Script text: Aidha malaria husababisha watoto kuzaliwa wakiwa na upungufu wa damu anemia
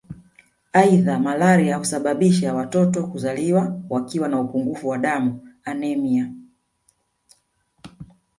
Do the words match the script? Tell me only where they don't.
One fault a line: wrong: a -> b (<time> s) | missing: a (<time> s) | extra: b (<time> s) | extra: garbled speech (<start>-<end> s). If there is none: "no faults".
no faults